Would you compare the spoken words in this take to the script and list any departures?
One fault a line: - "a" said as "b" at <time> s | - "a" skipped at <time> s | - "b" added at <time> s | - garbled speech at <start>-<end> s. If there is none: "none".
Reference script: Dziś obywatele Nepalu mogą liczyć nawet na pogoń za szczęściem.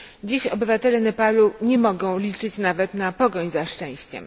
- "nie" added at 1.6 s